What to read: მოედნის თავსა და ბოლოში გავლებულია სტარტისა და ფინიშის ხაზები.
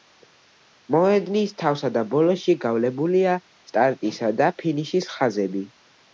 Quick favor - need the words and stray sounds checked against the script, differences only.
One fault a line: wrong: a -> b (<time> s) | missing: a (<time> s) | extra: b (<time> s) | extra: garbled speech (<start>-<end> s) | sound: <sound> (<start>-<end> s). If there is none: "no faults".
no faults